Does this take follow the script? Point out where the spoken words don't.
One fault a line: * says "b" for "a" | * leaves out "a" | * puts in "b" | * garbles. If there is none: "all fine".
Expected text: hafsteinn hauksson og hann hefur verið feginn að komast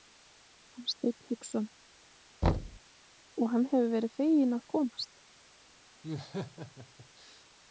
all fine